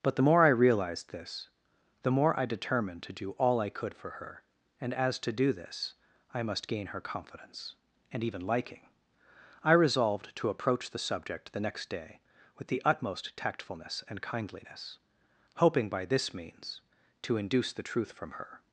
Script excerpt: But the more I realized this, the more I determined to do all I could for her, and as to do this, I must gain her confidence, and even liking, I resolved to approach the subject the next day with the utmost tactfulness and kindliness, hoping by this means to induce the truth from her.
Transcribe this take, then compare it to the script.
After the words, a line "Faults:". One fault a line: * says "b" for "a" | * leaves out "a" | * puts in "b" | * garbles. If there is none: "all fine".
But the more I realized this, the more I determined to do all I could for her, and as to do this, I must gain her confidence, and even liking, I resolved to approach the subject the next day with the utmost tactfulness and kindliness, hoping by this means to induce the truth from her.
Faults:
all fine